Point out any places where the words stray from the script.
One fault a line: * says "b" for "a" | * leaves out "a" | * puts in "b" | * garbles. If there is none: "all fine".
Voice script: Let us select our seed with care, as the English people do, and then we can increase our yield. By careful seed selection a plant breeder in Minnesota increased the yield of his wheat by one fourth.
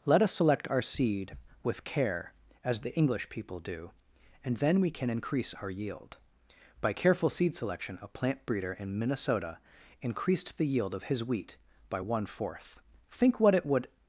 * puts in "Think what it would"